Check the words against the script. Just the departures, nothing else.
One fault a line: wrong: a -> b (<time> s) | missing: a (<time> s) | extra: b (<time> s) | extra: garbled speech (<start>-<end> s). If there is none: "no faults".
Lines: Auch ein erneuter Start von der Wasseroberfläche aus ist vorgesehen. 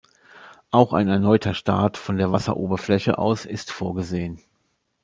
no faults